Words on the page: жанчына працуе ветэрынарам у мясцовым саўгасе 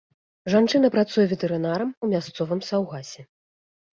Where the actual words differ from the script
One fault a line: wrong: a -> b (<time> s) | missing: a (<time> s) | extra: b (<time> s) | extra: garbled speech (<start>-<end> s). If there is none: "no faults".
no faults